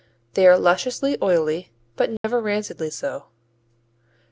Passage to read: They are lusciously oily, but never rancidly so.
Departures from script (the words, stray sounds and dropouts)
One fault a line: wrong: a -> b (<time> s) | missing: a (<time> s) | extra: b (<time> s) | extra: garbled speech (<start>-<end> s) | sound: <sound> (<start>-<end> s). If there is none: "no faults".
sound: dropout (2.2-2.2 s)